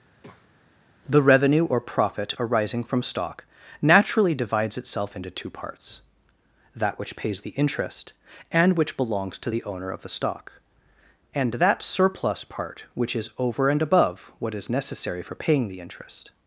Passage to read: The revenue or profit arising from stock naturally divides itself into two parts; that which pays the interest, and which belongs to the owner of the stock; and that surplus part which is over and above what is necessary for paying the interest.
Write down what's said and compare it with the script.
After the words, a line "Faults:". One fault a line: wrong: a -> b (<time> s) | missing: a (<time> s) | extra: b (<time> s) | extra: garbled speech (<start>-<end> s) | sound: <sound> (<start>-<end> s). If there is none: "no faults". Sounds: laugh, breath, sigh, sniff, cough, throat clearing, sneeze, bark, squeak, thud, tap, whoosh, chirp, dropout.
The revenue or profit arising from stock naturally divides itself into two parts; that which pays the interest, and which belongs to the owner of the stock; and that surplus part which is over and above what is necessary for paying the interest.
Faults:
sound: breath (0.2-0.6 s)